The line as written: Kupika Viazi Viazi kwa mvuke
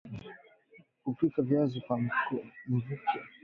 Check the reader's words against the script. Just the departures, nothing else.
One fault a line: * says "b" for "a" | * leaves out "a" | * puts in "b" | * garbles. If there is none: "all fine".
* leaves out "Viazi"